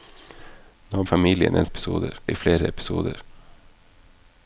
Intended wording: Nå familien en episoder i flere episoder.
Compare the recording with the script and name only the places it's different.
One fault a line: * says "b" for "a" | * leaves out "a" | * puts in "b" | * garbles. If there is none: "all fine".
all fine